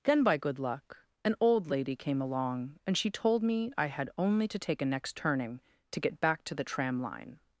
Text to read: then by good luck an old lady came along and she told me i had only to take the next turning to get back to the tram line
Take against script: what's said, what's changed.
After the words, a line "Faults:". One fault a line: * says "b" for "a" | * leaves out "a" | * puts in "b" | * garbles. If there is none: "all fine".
then by good luck an old lady came along and she told me i had only to take a next turning to get back to the tram line
Faults:
* says "a" for "the"